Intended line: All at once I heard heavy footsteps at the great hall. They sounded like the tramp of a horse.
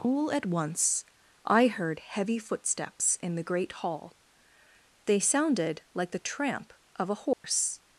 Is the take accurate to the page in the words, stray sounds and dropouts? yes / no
no